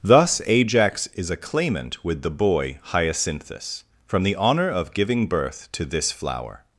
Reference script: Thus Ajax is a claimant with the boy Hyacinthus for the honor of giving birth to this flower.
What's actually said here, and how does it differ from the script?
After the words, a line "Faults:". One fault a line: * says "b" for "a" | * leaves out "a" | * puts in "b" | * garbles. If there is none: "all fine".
Thus Ajax is a claimant with the boy Hyacinthus from the honor of giving birth to this flower.
Faults:
* says "from" for "for"